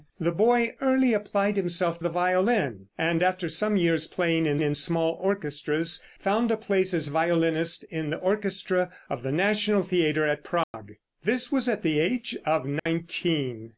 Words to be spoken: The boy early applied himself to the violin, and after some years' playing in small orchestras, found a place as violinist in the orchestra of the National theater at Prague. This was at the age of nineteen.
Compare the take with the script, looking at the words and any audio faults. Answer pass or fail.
fail